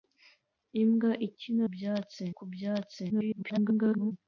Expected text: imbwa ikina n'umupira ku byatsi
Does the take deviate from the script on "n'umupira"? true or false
true